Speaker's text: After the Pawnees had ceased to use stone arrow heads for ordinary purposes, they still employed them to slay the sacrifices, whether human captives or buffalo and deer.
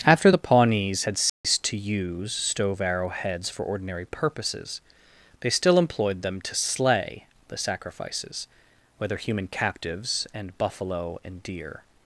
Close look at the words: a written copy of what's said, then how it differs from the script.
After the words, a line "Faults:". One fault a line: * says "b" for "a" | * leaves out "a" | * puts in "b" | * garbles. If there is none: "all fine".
After the Pawnees had ceased to use stove arrow heads for ordinary purposes, they still employed them to slay the sacrifices, whether human captives and buffalo and deer.
Faults:
* says "stove" for "stone"
* says "and" for "or"